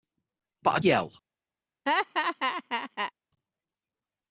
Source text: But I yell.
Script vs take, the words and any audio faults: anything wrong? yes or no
yes